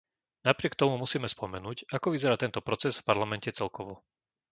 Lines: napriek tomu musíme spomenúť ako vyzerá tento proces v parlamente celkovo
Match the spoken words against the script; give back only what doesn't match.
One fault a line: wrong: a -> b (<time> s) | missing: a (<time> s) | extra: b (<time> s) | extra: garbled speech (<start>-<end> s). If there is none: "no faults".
no faults